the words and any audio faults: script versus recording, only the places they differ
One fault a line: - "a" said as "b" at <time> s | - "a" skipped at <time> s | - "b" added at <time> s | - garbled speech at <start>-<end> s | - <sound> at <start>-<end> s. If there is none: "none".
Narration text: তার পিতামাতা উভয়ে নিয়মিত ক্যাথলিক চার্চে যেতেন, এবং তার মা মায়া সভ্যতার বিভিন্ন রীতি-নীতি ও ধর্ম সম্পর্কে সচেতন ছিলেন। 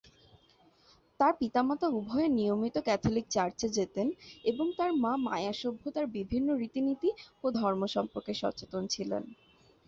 none